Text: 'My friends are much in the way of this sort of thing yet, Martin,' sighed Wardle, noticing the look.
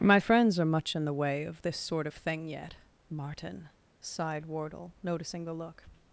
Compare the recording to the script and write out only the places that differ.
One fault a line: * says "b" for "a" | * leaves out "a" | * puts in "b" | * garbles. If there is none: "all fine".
all fine